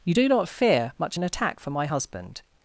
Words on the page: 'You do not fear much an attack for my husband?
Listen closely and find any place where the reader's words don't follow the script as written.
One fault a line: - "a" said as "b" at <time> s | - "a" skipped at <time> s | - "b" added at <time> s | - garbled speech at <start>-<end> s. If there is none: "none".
none